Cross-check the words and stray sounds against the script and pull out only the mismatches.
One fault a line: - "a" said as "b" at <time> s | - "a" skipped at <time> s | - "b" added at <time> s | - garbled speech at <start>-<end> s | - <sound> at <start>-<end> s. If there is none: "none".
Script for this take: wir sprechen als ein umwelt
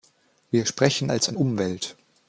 none